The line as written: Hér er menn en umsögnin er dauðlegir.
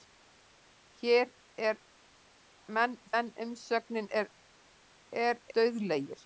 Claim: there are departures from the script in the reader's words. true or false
false